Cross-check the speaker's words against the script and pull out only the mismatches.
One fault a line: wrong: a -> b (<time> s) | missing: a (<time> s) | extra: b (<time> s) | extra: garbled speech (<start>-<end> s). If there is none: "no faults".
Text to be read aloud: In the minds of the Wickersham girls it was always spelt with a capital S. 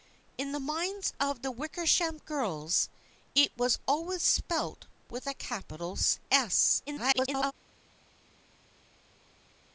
extra: garbled speech (6.9-7.5 s)